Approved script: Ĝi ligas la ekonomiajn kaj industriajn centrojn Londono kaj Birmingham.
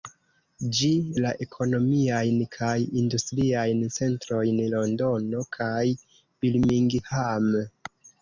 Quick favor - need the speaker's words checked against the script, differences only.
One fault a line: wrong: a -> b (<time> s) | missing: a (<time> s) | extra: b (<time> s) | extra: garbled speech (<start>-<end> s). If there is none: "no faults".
missing: ligas (0.9 s)